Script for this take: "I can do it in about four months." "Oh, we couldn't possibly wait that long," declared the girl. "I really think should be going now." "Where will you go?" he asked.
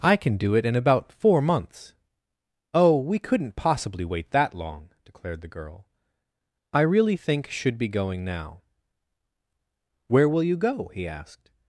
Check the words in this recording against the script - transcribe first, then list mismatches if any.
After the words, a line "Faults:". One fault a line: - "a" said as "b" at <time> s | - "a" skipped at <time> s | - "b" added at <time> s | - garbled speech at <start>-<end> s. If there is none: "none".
"I can do it in about four months." "Oh, we couldn't possibly wait that long," declared the girl. "I really think should be going now." "Where will you go?" he asked.
Faults:
none